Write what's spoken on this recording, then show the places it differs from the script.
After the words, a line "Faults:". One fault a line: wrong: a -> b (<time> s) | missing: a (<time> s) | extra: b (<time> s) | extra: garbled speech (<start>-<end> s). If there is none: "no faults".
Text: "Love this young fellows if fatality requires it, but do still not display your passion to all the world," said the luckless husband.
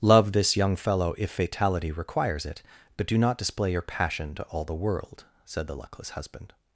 "Love this young fellow if fatality requires it, but do not display your passion to all the world," said the luckless husband.
Faults:
wrong: fellows -> fellow (0.8 s)
missing: still (3.2 s)